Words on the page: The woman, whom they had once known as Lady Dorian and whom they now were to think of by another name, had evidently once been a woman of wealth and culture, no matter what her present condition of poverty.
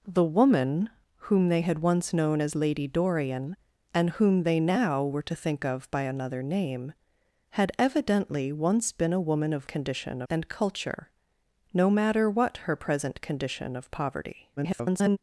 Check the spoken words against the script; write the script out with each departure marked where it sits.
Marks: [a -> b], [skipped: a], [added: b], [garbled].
The woman, whom they had once known as Lady Dorian and whom they now were to think of by another name, had evidently once been a woman of [wealth -> condition] and culture, no matter what her present condition of poverty. [garbled]